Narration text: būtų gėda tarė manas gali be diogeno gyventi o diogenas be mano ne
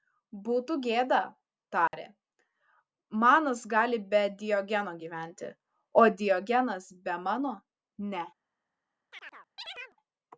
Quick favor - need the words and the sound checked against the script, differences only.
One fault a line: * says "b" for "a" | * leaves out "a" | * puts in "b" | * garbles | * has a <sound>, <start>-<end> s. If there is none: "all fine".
* has a dropout, 1.9-1.9 s
* has a chirp, 9.1-10.0 s